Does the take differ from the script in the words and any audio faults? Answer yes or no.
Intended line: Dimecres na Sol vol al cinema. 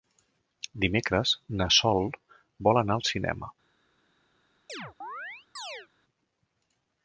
yes